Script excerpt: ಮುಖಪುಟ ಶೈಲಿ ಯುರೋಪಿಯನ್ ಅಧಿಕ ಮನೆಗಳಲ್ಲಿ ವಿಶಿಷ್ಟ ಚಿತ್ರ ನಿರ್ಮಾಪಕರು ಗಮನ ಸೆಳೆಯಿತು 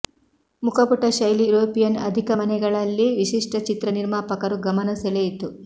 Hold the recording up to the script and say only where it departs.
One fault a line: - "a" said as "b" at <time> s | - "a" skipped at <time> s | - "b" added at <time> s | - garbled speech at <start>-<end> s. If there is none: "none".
none